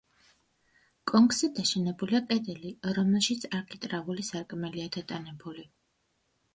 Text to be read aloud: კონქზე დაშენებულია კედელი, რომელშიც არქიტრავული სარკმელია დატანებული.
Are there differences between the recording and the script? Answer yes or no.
no